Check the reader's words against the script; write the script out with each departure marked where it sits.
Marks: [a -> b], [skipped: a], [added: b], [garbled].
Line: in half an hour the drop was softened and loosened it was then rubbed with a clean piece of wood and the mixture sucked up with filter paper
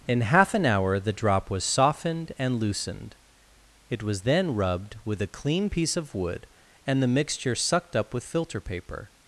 in half an hour the drop was softened and loosened it was then rubbed with a clean piece of wood and the mixture sucked up with filter paper